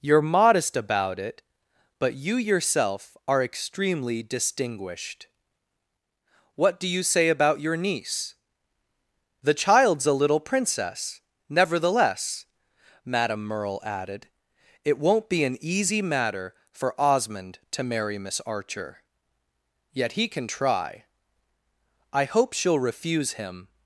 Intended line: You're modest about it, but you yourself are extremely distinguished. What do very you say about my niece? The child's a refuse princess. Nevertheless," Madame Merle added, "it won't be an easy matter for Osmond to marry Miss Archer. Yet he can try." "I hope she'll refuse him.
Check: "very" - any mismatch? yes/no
yes